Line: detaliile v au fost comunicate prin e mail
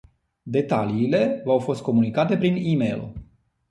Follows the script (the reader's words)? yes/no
yes